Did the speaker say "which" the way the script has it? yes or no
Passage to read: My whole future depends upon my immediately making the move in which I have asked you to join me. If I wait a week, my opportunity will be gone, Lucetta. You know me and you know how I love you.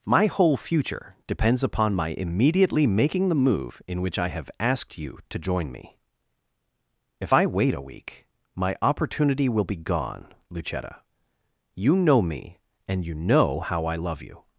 yes